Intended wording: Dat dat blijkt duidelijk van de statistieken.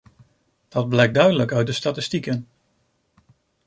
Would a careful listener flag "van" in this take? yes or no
yes